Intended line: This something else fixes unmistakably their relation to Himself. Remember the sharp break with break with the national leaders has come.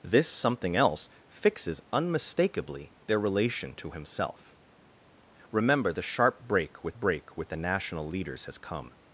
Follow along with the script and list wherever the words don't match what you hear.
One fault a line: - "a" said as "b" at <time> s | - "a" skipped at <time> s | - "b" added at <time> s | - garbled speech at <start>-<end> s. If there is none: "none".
none